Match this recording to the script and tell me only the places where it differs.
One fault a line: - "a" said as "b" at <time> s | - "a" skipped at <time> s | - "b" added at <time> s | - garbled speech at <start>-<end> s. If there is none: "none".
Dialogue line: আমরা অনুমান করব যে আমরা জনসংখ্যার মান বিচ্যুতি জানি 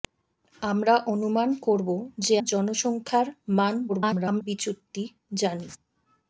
- "আমরা" skipped at 2.4 s
- garbled speech at 3.9-4.4 s